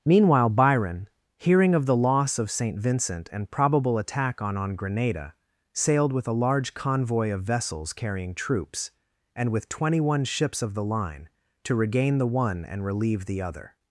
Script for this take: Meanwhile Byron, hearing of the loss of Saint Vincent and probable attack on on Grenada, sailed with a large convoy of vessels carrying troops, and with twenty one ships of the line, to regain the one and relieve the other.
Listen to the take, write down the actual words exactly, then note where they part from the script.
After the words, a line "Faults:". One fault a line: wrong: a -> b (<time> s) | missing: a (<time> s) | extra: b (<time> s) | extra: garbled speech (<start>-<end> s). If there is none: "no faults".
Meanwhile Byron, hearing of the loss of Saint Vincent and probable attack on on Grenada, sailed with a large convoy of vessels carrying troops, and with twenty one ships of the line, to regain the one and relieve the other.
Faults:
no faults